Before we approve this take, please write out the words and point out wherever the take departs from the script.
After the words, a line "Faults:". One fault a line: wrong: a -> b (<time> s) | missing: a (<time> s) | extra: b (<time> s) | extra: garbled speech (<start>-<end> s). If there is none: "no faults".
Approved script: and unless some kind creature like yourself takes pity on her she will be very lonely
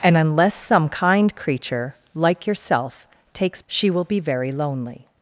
and unless some kind creature like yourself takes she will be very lonely
Faults:
missing: pity on her (3.6 s)